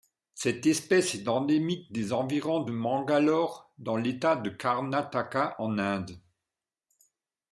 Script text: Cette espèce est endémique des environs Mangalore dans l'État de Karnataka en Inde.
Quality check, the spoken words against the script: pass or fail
pass